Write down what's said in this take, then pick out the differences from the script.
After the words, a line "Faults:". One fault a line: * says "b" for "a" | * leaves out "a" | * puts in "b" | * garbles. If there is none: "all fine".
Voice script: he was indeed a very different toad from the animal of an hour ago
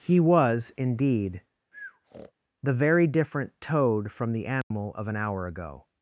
he was indeed the very different toad from the animal of an hour ago
Faults:
* says "the" for "a"